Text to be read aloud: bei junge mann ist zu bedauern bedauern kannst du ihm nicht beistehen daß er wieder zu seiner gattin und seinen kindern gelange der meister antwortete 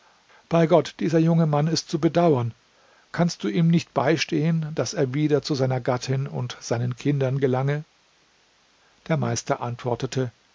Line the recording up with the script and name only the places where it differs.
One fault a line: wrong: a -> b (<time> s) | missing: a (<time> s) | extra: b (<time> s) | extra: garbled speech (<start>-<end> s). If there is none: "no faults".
extra: gott dieser (0.7 s)
missing: bedauern (2.5 s)